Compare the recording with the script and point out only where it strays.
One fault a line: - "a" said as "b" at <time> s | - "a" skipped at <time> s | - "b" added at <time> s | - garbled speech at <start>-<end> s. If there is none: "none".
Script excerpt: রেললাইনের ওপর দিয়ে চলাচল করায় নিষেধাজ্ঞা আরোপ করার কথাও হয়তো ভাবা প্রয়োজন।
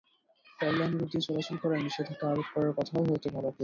- "ওপর" skipped at 1.0 s